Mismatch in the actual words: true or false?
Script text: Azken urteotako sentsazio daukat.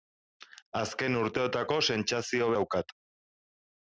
false